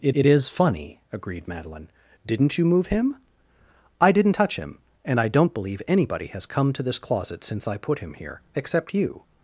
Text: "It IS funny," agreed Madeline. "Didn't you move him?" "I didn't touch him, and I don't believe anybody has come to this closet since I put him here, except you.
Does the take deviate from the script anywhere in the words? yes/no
yes